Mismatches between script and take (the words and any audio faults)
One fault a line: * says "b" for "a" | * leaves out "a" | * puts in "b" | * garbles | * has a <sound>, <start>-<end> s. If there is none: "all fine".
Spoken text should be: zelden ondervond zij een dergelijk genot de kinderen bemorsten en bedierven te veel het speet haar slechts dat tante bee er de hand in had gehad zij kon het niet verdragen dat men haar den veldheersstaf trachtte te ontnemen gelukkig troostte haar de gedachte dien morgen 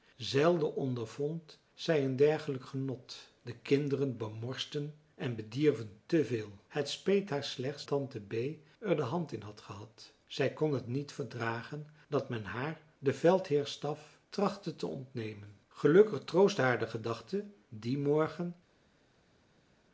* leaves out "dat"